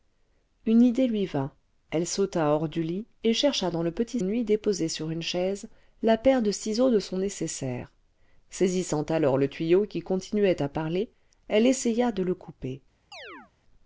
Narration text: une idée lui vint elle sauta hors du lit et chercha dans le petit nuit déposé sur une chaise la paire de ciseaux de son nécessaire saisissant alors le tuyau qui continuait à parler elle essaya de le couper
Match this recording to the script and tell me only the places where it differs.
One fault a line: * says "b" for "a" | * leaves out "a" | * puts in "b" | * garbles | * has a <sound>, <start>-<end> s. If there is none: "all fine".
* has a chirp, 13.1-13.5 s